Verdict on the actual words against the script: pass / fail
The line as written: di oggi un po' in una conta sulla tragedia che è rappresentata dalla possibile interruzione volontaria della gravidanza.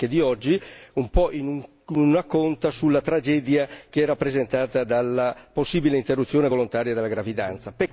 pass